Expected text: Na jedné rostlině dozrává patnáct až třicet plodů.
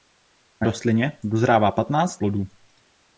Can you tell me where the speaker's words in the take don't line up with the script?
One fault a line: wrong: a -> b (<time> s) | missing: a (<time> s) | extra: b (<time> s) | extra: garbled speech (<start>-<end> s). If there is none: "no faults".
missing: jedné (0.7 s)
missing: až třicet (2.2 s)